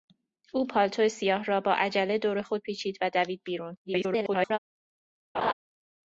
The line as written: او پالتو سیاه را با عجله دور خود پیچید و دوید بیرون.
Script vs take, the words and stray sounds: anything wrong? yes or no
yes